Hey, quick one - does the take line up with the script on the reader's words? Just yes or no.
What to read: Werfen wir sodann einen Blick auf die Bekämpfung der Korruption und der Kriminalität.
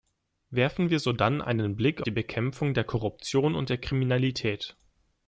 no